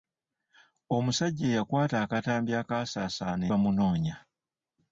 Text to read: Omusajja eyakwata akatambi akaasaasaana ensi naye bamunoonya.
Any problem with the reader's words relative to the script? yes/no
yes